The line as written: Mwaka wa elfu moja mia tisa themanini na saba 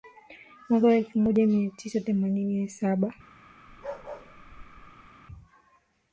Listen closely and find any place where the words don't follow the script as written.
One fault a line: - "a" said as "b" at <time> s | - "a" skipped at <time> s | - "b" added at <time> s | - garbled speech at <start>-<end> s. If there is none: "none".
none